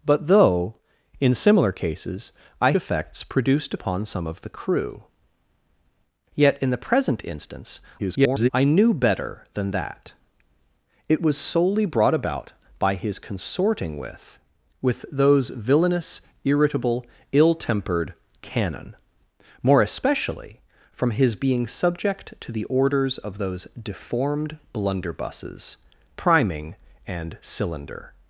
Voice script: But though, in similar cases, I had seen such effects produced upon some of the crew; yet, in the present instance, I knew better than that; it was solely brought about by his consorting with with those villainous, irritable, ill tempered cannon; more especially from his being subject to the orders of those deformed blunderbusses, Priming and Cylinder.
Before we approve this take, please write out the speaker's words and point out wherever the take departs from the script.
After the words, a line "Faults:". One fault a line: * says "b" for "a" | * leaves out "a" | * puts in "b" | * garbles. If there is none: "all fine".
But though, in similar cases, I effects produced upon some of the crew; yet, in the present instance, [garbled] I knew better than that; it was solely brought about by his consorting with with those villainous, irritable, ill tempered cannon; more especially from his being subject to the orders of those deformed blunderbusses, Priming and Cylinder.
Faults:
* leaves out "had seen such"
* garbles